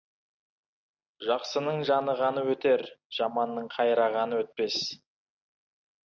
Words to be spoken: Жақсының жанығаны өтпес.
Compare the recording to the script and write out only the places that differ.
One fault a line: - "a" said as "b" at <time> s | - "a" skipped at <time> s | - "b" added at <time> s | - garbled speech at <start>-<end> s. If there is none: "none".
- "өтер жаманның қайрағаны" added at 2.5 s